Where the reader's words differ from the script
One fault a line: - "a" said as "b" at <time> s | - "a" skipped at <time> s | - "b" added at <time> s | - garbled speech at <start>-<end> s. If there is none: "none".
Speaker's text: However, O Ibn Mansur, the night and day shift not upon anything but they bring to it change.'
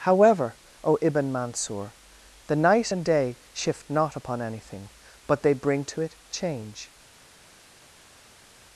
none